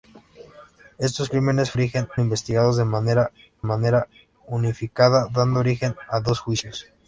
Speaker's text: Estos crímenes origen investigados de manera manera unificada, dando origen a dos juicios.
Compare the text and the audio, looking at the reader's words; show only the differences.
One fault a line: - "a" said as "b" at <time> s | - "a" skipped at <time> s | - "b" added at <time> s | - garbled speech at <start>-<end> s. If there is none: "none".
none